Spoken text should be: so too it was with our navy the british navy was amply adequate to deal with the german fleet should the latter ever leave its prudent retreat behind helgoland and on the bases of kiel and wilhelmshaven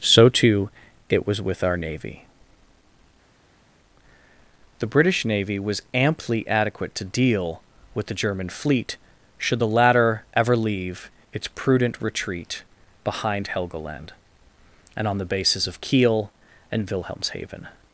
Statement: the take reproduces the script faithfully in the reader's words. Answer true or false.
true